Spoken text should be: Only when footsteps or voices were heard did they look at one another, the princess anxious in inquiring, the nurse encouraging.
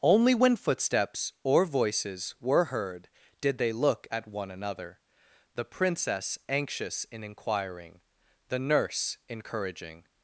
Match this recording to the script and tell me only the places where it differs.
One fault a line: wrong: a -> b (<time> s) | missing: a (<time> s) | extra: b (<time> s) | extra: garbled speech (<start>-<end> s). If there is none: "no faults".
no faults